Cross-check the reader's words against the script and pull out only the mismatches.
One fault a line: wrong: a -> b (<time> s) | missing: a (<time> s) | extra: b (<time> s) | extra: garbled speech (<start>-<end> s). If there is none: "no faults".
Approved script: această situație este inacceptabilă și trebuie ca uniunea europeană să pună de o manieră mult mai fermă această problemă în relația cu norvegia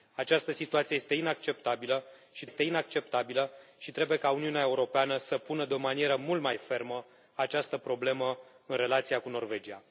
extra: este inacceptabilă și (2.4 s)